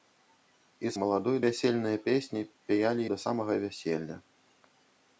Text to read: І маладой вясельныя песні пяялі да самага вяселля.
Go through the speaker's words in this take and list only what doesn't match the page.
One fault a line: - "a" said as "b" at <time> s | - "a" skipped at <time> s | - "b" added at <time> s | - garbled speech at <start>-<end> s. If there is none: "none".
none